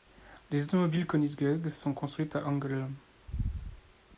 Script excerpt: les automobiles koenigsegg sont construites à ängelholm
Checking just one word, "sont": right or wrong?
right